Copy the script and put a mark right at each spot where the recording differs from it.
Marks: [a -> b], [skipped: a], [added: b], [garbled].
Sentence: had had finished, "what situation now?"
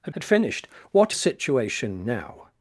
had had finished, "what situation now?"